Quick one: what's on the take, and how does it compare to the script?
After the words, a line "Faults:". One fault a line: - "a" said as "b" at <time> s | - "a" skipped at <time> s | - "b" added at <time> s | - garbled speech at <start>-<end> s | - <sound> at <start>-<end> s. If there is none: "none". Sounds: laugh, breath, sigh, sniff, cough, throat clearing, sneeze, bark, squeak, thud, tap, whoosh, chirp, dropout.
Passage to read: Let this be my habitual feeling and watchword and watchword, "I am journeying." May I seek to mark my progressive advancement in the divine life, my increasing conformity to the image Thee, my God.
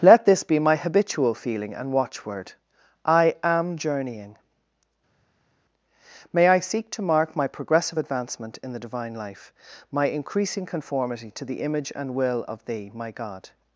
Let this be my habitual feeling and watchword, "I am journeying." May I seek to mark my progressive advancement in the divine life, my increasing conformity to the image and will of Thee, my God.
Faults:
- "and watchword" skipped at 2.5 s
- "and will of" added at 12.0 s